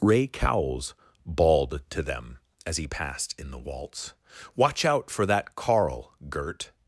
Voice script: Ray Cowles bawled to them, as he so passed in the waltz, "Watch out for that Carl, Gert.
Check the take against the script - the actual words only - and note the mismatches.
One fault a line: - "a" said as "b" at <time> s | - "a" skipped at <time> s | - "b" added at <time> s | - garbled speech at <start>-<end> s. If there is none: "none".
- "so" skipped at 2.9 s